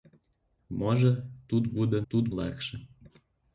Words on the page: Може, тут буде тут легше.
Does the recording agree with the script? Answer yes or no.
yes